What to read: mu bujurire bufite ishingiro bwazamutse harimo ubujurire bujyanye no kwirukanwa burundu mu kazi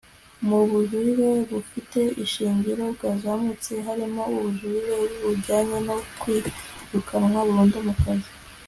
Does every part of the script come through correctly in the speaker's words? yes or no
yes